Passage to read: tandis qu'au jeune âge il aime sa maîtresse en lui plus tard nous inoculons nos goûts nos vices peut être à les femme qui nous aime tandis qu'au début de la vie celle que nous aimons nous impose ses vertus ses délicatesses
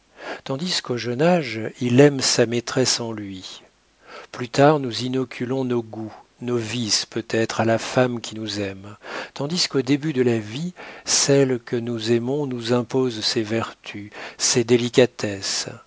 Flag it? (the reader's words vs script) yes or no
yes